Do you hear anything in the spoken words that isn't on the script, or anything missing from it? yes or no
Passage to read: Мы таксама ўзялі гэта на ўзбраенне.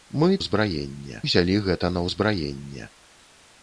yes